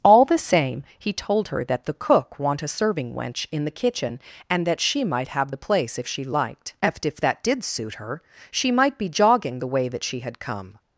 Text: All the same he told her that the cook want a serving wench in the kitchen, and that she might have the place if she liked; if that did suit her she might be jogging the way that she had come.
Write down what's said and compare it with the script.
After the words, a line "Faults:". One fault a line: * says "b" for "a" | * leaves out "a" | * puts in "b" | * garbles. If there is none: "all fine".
All the same he told her that the cook want a serving wench in the kitchen, and that she might have the place if she liked; if that did suit her she might be jogging the way that she had come.
Faults:
all fine